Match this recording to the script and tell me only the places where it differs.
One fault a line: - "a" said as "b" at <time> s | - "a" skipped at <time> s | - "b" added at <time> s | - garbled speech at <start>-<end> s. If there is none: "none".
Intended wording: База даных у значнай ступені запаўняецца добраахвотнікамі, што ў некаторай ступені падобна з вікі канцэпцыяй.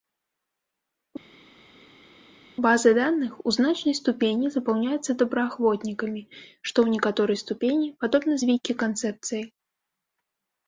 none